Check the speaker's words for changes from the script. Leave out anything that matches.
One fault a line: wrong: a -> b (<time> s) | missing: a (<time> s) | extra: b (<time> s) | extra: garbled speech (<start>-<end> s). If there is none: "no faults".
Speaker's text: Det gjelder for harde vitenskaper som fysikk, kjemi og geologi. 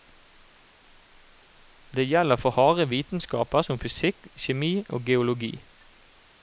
no faults